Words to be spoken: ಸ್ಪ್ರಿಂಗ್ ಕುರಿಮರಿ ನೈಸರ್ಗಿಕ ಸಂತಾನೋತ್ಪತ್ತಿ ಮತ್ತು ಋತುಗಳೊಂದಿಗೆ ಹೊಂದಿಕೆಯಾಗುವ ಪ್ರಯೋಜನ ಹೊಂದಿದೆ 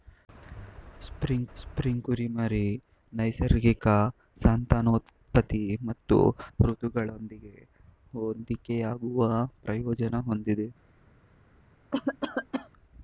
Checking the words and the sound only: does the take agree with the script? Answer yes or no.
no